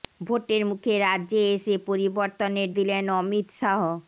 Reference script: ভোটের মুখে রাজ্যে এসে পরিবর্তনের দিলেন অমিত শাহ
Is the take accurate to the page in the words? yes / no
yes